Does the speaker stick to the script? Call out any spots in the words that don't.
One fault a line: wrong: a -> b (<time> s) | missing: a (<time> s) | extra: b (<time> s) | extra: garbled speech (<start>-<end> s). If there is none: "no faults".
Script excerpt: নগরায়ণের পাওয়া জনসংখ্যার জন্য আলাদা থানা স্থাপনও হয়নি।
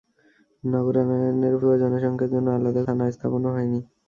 no faults